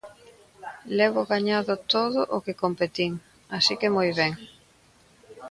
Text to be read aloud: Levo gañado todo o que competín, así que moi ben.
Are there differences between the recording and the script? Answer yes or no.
no